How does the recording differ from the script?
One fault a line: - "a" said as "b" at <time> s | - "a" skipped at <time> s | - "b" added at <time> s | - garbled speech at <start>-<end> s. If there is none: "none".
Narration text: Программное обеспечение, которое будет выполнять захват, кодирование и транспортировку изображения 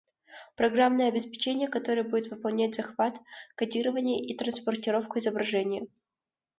none